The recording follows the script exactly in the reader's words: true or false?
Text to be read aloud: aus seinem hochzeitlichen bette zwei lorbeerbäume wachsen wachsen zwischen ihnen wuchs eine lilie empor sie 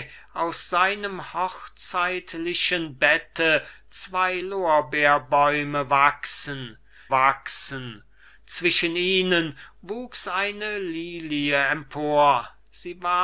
true